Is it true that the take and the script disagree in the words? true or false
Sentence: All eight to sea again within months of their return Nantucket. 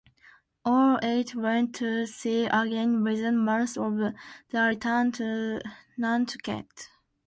true